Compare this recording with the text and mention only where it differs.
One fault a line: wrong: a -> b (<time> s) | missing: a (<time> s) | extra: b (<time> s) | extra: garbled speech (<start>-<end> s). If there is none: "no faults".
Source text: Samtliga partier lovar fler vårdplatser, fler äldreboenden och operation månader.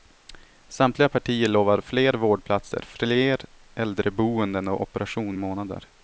no faults